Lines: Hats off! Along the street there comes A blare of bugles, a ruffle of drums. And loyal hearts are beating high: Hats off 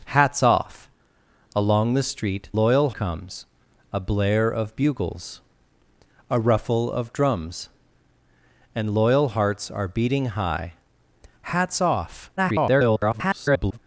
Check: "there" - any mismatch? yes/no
yes